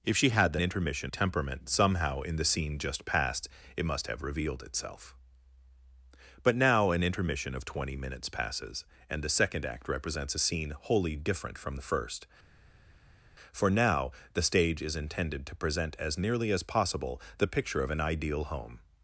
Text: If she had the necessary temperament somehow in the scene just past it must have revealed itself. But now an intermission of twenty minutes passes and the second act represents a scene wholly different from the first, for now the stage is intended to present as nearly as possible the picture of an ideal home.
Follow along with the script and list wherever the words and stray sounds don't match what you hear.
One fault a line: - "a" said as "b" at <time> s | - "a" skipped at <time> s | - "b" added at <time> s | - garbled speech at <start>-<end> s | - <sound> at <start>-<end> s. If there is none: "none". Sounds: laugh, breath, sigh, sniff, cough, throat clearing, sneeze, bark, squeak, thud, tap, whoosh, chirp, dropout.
- "necessary" said as "intermission" at 0.6 s